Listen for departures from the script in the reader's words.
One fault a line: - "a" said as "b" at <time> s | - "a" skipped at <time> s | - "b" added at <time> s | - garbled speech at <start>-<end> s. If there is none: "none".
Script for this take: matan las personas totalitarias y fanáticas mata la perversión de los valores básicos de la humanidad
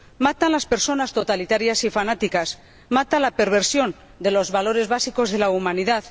none